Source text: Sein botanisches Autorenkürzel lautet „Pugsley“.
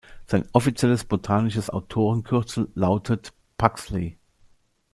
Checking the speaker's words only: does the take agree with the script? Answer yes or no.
no